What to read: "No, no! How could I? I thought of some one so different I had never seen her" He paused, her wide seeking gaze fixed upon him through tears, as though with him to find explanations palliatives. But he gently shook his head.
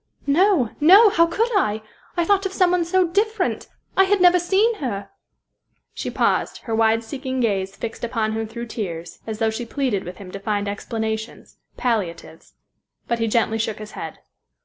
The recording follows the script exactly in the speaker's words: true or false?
false